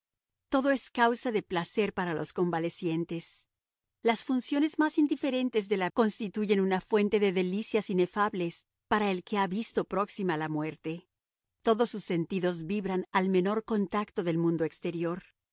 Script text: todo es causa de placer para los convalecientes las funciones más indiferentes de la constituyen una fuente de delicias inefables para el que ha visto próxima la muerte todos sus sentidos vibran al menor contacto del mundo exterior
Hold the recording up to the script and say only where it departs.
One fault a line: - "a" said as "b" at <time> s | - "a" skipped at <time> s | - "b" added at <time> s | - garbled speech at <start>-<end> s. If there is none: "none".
none